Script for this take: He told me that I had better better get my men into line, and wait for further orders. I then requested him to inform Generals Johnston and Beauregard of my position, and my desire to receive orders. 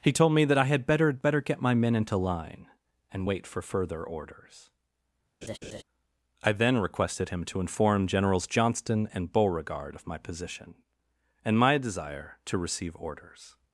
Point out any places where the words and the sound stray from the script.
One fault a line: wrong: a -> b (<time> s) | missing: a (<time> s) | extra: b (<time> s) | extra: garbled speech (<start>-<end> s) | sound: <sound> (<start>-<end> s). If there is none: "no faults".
sound: laugh (5.4-5.8 s)